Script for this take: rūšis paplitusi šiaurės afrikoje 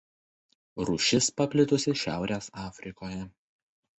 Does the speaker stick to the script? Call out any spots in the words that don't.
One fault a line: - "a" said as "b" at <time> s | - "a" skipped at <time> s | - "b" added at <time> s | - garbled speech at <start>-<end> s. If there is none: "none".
none